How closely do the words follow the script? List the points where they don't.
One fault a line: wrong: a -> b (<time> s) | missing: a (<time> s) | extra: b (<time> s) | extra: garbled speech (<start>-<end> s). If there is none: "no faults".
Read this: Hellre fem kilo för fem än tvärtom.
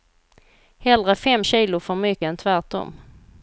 wrong: fem -> mycket (1.9 s)